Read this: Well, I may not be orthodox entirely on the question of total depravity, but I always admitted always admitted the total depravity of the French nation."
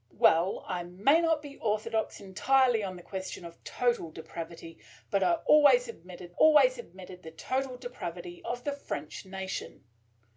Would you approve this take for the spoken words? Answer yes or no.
yes